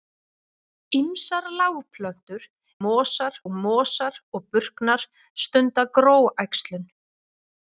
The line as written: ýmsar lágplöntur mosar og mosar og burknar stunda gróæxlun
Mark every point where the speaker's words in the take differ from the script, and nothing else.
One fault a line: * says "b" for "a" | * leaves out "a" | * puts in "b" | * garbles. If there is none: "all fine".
all fine